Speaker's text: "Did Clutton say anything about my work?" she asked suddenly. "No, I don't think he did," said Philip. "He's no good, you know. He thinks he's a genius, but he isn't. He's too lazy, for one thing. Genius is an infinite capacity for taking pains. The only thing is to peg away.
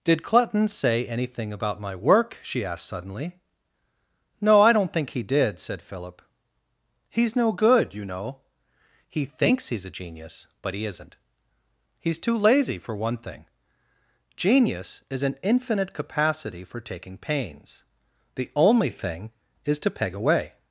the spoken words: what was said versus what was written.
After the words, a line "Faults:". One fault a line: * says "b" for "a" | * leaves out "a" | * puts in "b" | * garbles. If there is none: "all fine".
"Did Clutton say anything about my work?" she asked suddenly. "No, I don't think he did," said Philip. "He's no good, you know. He thinks he's a genius, but he isn't. He's too lazy, for one thing. Genius is an infinite capacity for taking pains. The only thing is to peg away.
Faults:
all fine